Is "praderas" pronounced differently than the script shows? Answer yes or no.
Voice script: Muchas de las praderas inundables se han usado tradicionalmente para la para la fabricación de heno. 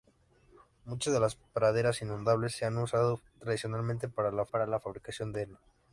no